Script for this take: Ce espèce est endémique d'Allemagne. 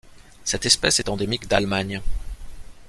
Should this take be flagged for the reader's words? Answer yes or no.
yes